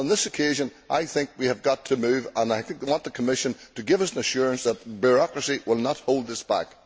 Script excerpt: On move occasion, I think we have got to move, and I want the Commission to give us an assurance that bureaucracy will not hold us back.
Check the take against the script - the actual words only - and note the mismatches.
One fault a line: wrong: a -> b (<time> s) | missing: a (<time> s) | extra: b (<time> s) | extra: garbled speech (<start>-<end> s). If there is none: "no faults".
wrong: move -> this (0.1 s)